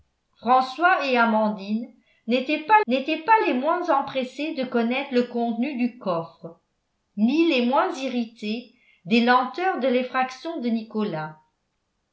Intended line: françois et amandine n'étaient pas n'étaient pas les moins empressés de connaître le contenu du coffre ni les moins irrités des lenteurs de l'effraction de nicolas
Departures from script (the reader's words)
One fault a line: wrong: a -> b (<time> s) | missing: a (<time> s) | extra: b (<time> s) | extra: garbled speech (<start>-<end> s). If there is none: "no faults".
no faults